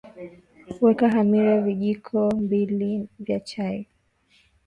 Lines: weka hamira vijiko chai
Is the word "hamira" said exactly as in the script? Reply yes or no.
yes